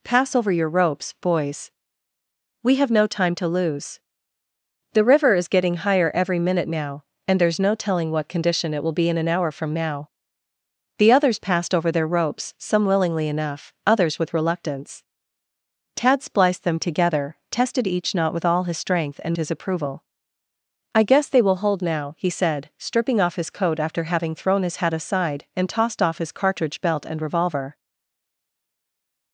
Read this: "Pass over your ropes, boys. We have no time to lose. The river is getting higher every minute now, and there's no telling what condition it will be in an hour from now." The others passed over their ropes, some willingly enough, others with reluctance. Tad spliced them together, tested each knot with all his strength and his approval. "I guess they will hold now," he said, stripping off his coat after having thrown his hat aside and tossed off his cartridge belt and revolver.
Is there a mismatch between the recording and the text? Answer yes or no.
no